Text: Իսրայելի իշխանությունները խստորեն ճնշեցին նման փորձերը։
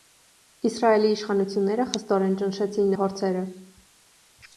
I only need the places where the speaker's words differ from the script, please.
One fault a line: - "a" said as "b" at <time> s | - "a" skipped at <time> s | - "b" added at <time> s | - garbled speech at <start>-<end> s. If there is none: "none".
- "նման" skipped at 2.9 s